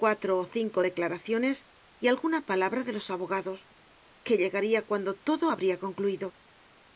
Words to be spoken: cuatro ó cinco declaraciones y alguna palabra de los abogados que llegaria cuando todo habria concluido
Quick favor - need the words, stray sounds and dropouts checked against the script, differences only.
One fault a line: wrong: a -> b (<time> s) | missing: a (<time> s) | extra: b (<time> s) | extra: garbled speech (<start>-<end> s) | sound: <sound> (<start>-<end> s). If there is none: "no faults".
no faults